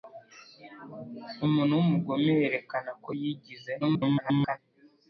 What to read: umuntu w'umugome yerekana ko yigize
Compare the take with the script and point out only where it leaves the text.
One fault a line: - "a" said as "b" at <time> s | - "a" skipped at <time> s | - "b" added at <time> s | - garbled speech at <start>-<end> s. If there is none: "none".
- garbled speech at 3.8-4.6 s